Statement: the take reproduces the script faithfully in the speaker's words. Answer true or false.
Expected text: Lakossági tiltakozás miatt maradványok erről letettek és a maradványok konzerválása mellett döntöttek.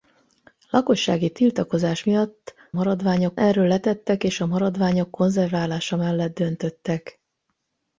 true